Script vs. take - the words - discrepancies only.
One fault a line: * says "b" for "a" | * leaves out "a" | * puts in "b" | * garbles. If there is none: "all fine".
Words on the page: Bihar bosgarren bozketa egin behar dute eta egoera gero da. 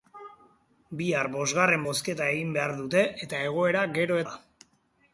all fine